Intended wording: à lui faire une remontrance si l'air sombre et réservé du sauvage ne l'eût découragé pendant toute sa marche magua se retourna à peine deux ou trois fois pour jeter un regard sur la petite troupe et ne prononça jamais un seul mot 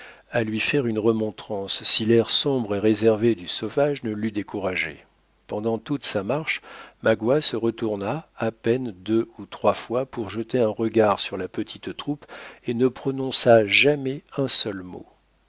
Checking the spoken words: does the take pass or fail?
pass